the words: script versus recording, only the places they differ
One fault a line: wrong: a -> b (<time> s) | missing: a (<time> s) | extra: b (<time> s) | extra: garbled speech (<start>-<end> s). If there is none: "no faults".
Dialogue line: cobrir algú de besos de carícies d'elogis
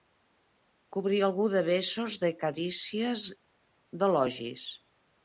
no faults